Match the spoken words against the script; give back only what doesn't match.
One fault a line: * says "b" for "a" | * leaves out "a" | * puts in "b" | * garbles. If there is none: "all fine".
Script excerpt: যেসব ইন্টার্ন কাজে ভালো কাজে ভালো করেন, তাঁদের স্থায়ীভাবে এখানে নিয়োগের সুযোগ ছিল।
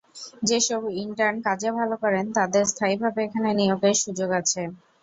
* leaves out "কাজে ভালো"
* says "আছে" for "ছিল"